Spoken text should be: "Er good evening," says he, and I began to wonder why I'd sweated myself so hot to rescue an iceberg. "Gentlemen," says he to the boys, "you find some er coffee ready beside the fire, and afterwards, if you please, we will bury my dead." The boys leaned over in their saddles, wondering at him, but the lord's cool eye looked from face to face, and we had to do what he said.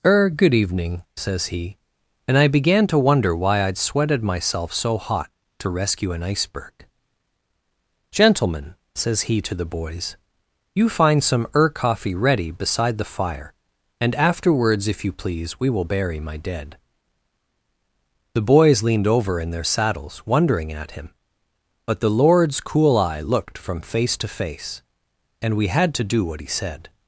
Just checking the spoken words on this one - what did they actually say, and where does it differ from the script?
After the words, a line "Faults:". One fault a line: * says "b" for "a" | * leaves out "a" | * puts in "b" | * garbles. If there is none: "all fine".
"Er good evening," says he, and I began to wonder why I'd sweated myself so hot to rescue an iceberg. "Gentlemen," says he to the boys, "you find some er coffee ready beside the fire, and afterwards, if you please, we will bury my dead." The boys leaned over in their saddles, wondering at him, but the lord's cool eye looked from face to face, and we had to do what he said.
Faults:
all fine